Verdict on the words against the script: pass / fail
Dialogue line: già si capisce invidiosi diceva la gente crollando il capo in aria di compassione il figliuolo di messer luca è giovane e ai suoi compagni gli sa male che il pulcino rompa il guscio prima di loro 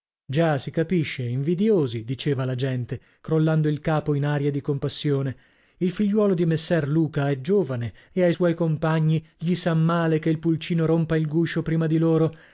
pass